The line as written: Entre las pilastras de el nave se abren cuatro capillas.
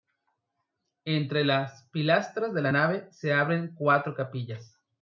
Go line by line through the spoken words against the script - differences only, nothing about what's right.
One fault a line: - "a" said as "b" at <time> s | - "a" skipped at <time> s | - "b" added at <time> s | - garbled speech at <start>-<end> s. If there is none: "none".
- "el" said as "la" at 2.6 s